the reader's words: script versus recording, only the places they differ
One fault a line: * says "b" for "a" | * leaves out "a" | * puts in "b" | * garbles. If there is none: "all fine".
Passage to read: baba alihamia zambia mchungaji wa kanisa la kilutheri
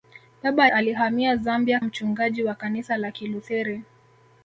all fine